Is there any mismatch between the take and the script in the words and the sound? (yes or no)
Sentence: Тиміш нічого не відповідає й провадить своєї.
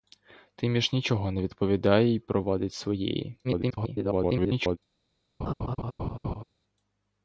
yes